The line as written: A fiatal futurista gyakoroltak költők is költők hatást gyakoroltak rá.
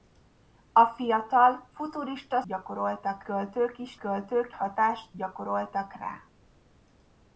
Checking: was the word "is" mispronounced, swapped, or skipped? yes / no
no